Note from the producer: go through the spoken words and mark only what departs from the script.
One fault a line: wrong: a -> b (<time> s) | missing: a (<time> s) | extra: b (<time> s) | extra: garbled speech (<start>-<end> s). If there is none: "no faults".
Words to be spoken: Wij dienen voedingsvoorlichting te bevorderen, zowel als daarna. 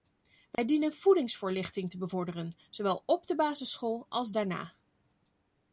extra: op de basisschool (3.1 s)